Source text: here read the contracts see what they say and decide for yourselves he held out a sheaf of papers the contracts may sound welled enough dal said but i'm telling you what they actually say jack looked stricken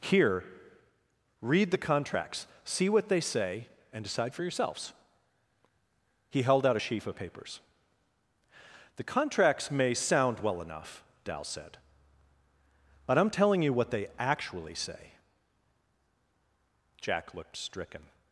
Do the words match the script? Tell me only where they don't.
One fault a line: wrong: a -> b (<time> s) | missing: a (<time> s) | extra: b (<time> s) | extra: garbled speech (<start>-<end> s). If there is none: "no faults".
wrong: welled -> well (10.4 s)